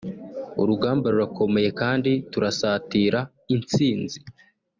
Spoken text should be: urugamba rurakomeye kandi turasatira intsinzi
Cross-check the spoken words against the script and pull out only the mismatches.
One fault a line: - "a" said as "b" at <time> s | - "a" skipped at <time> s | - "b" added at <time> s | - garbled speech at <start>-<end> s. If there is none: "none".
none